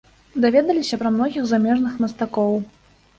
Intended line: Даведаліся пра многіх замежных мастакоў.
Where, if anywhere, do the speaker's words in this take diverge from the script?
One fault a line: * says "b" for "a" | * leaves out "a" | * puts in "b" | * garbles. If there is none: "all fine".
all fine